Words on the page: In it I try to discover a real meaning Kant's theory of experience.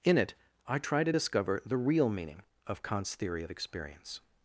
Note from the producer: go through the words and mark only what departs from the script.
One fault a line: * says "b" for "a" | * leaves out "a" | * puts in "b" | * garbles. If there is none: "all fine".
* says "the" for "a"
* puts in "of"